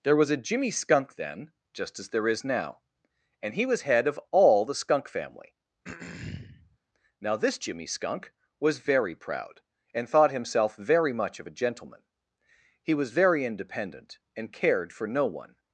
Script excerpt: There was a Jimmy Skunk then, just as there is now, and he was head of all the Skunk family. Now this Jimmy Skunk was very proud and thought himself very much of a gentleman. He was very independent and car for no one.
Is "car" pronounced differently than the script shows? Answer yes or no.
yes